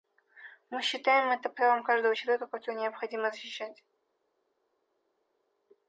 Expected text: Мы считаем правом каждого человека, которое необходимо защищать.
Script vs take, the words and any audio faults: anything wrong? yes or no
yes